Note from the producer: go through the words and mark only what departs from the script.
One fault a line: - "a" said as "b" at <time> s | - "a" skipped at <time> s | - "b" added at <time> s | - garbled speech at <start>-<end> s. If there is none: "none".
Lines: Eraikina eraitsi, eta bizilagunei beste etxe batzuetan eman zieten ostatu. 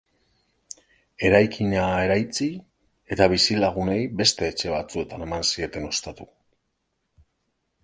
none